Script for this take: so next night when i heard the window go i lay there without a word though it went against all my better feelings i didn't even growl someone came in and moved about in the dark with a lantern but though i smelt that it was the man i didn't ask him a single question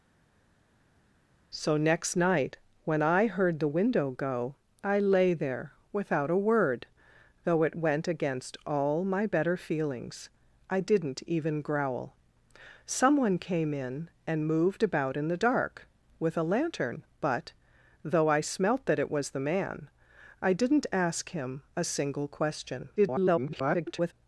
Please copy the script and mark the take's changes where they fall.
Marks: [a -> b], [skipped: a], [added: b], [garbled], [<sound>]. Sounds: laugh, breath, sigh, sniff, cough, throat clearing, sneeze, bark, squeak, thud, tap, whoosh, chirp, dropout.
so next night when i heard the window go i lay there without a word though it went against all my better feelings i didn't even growl someone came in and moved about in the dark with a lantern but though i smelt that it was the man i didn't ask him a single question [garbled]